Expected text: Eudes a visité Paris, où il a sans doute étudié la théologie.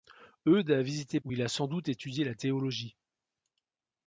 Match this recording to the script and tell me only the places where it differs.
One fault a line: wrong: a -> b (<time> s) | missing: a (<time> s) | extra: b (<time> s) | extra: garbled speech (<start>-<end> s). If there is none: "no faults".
missing: Paris (1.2 s)